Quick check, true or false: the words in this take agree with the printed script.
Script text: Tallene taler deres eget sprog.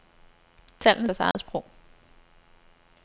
false